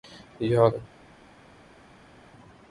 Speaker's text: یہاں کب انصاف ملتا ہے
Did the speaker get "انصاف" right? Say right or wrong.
wrong